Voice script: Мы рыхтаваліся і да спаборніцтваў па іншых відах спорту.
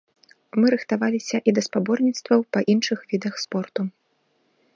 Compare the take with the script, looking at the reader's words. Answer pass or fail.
pass